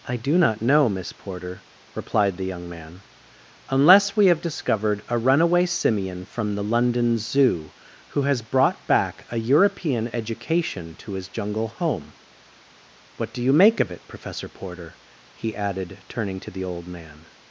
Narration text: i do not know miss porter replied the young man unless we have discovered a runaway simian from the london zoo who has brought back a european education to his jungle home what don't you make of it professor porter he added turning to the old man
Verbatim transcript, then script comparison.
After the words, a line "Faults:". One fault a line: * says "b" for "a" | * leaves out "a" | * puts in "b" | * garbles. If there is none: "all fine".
i do not know miss porter replied the young man unless we have discovered a runaway simian from the london zoo who has brought back a european education to his jungle home what do you make of it professor porter he added turning to the old man
Faults:
* says "do" for "don't"